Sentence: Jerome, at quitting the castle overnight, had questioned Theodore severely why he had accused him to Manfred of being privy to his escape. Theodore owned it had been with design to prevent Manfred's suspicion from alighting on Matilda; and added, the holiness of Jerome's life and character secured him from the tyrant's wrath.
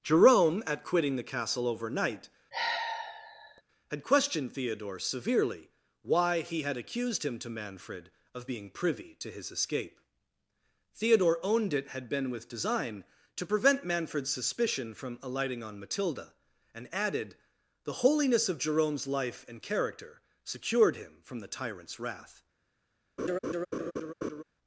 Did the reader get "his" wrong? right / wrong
right